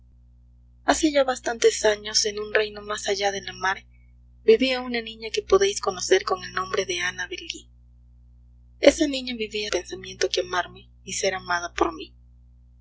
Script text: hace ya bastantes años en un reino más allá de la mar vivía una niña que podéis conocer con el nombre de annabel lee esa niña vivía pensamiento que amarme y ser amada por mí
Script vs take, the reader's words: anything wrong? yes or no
no